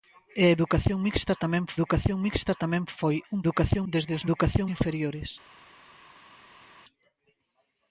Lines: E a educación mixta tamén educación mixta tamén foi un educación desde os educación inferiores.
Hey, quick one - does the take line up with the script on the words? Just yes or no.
yes